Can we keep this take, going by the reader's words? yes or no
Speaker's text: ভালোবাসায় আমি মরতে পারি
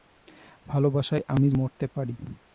yes